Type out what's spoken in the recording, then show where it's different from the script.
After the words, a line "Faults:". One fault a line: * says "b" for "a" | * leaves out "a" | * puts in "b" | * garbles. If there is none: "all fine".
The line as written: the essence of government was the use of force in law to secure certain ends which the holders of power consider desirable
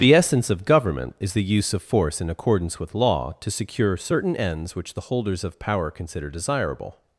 the essence of government is the use of force in accordance with law to secure certain ends which the holders of power consider desirable
Faults:
* says "is" for "was"
* puts in "accordance with"